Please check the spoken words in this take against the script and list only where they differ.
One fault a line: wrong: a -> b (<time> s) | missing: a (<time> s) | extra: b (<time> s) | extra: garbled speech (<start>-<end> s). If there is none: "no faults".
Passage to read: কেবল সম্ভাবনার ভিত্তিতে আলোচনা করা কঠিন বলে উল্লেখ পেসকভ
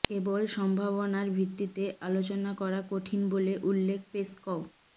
no faults